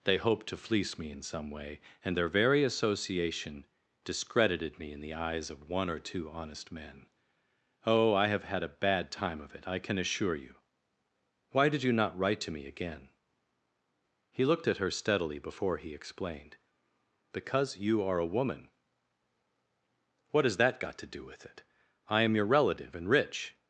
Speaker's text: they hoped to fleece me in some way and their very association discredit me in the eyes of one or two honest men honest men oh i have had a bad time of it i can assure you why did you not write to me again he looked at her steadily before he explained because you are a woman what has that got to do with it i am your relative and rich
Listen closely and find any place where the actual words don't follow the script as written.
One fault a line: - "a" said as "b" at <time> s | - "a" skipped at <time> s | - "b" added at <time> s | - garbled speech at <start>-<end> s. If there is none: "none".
- "discredit" said as "discredited" at 4.0 s
- "honest men" skipped at 7.1 s